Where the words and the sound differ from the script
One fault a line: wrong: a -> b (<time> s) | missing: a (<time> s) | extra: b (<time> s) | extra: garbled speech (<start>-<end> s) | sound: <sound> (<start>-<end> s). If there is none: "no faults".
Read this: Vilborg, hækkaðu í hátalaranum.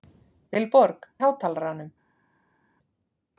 missing: hækkaðu (1.1 s)